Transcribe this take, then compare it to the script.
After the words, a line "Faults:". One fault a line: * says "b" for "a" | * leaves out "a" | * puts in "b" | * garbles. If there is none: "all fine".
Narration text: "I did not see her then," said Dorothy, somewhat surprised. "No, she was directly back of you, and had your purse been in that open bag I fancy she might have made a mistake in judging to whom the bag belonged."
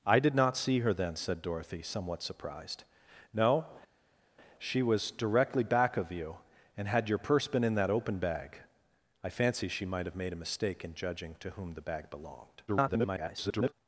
"I did not see her then," said Dorothy, somewhat surprised. "No, she was directly back of you, and had your purse been in that open bag I fancy she might have made a mistake in judging to whom the bag belonged." [garbled]
Faults:
* garbles